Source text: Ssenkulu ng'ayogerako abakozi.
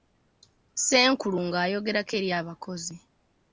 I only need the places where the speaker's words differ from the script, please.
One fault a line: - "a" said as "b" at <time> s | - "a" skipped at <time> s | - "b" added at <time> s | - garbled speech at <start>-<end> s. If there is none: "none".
- "eri" added at 2.2 s